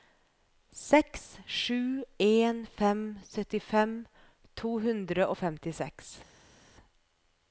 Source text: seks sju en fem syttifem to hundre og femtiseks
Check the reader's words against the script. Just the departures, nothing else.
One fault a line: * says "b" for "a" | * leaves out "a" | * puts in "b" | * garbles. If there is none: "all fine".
all fine